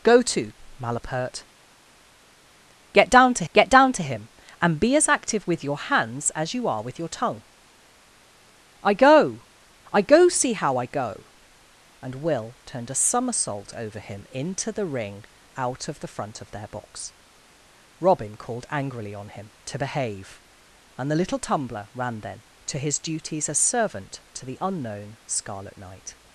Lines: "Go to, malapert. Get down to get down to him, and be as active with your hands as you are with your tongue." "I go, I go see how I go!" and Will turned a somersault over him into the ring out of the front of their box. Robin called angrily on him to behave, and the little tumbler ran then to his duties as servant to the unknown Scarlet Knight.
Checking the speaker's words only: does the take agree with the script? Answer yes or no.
yes